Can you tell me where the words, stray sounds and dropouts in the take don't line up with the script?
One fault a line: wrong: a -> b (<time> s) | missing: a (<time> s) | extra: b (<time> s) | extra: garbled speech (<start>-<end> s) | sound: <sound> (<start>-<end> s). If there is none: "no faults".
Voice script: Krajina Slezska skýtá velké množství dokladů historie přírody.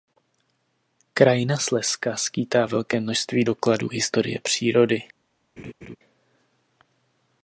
sound: laugh (5.6-6.0 s)